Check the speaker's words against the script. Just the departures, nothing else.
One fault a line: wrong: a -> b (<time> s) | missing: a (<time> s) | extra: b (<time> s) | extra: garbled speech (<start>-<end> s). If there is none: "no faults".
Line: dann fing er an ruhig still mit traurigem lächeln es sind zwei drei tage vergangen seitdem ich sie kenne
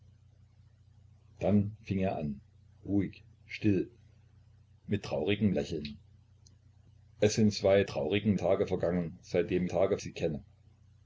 wrong: drei -> traurigem (7.9 s)
wrong: ich -> tage (9.6 s)